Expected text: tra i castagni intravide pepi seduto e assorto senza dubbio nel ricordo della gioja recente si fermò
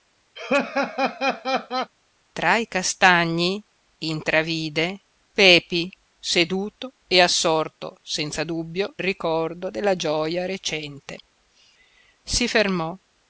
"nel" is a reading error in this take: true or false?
true